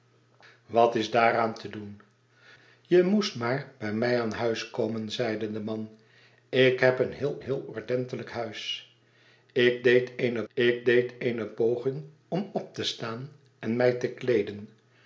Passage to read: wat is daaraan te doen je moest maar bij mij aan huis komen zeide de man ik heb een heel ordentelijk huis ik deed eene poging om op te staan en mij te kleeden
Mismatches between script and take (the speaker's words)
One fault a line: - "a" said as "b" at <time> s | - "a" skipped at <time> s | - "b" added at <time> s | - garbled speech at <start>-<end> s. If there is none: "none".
- "heel" added at 7.4 s
- "ik deed eene" added at 10.5 s